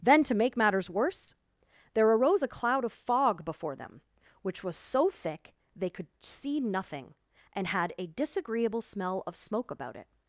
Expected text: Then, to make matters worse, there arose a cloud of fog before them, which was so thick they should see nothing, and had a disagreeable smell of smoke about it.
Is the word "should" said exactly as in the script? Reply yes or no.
no